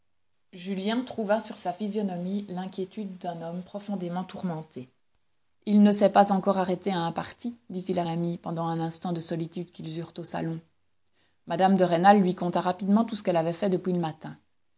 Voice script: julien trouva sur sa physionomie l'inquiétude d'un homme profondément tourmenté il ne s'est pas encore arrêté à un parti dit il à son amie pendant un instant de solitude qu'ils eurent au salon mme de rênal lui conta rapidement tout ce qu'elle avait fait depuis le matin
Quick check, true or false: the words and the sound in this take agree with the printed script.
false